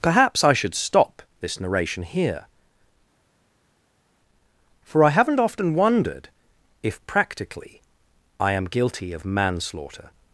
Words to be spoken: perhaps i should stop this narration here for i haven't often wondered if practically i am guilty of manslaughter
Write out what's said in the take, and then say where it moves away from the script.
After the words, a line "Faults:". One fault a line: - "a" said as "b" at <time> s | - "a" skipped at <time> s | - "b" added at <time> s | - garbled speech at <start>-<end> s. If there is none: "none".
perhaps i should stop this narration here for i haven't often wondered if practically i am guilty of manslaughter
Faults:
none